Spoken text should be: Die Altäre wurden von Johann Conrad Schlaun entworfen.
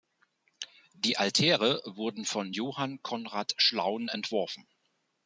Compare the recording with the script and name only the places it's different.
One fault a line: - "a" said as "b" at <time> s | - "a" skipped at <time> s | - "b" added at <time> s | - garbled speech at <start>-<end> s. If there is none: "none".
none